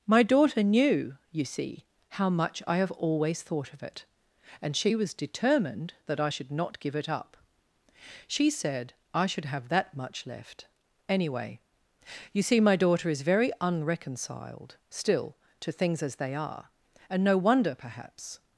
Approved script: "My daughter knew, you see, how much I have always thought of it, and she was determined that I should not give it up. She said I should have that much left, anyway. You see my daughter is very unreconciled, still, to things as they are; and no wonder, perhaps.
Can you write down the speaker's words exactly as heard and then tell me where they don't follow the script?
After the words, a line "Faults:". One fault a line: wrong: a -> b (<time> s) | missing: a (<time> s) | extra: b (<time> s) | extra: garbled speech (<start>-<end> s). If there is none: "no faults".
"My daughter knew, you see, how much I have always thought of it, and she was determined that I should not give it up. She said I should have that much left, anyway. You see my daughter is very unreconciled, still, to things as they are; and no wonder, perhaps.
Faults:
no faults